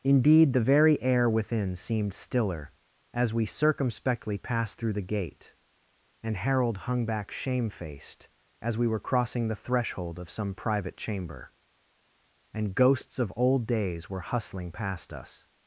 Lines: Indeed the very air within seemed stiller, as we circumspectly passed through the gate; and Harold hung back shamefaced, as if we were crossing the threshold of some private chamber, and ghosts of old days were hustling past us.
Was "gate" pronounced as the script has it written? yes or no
yes